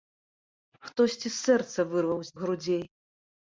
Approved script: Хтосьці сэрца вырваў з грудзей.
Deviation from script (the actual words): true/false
false